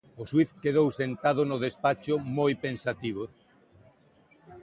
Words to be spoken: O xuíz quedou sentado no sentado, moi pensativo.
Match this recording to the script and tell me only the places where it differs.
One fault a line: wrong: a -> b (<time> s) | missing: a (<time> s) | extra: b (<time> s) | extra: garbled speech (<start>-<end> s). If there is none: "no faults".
wrong: sentado -> despacho (1.6 s)